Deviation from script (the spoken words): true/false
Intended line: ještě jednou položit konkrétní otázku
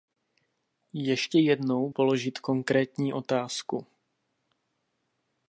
false